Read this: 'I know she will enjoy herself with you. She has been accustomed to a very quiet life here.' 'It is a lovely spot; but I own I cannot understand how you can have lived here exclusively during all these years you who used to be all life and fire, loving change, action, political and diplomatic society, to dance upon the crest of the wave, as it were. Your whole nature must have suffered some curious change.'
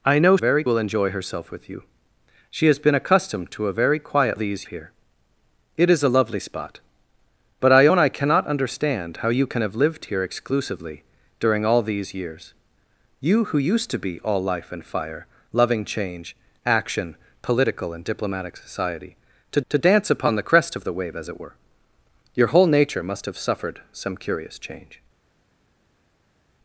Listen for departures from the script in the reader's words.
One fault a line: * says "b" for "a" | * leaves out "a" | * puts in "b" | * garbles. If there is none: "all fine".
* says "very" for "she"
* says "these" for "life"
* puts in "to"